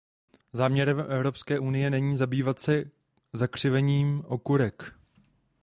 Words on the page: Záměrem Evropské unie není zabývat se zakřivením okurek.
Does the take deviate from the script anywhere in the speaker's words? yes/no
no